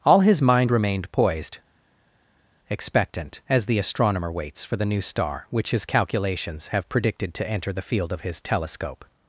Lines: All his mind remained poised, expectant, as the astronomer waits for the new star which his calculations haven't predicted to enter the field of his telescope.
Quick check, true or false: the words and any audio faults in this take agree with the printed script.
false